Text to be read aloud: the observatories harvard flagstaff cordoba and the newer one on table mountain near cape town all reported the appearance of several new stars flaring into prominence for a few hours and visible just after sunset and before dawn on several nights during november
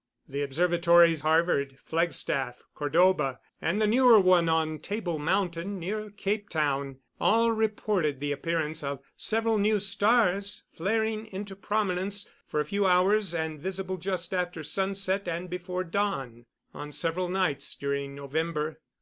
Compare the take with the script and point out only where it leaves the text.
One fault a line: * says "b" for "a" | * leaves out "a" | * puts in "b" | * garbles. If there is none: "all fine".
all fine